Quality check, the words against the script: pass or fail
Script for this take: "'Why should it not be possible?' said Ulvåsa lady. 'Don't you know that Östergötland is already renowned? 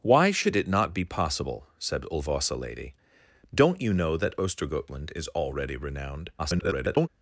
fail